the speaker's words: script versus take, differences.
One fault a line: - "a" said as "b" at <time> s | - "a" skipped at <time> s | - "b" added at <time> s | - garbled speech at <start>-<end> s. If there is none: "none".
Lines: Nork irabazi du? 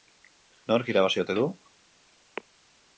- "ote" added at 1.2 s